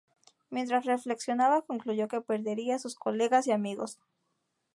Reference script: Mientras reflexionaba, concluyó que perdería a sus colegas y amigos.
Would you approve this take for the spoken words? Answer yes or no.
yes